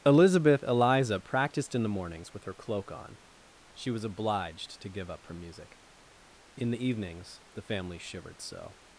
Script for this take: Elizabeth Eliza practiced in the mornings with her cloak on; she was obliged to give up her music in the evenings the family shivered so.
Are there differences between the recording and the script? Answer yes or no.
no